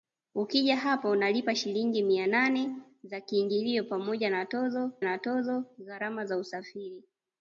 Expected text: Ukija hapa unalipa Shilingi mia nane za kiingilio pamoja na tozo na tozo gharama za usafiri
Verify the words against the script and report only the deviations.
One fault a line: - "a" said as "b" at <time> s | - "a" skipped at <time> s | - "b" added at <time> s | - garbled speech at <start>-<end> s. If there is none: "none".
none